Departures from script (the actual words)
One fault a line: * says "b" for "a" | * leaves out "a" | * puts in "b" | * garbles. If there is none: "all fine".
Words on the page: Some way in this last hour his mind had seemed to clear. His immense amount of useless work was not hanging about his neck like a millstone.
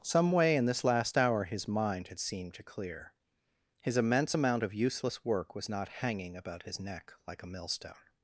all fine